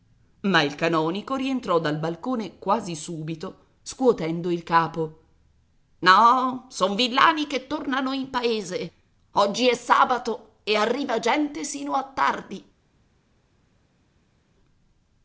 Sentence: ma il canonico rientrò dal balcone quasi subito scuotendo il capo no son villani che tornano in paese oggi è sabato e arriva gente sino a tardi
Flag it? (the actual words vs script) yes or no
no